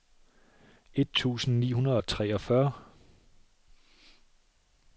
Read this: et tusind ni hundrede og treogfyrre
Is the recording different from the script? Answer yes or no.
no